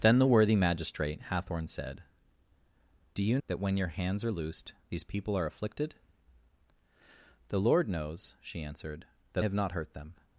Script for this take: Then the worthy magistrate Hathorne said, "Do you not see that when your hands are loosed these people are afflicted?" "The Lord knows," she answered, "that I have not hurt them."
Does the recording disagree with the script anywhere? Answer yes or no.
yes